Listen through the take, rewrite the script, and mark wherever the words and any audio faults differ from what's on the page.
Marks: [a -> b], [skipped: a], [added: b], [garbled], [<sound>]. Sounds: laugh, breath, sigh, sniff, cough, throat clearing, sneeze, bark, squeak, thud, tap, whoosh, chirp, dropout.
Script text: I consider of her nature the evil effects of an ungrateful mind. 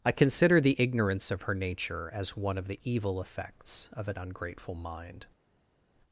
I consider [added: the ignorance] of her nature [added: as one of] the evil effects of an ungrateful mind.